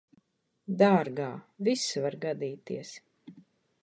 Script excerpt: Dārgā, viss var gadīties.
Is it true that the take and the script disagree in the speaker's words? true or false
false